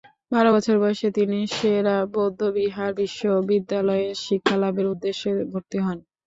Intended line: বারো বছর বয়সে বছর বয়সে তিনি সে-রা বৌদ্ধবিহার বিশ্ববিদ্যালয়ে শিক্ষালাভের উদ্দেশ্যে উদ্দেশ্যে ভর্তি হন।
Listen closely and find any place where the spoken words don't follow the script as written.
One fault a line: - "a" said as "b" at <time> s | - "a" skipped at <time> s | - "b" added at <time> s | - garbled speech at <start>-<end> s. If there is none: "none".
- "বছর বয়সে" skipped at 1.1 s
- "উদ্দেশ্যে" skipped at 5.3 s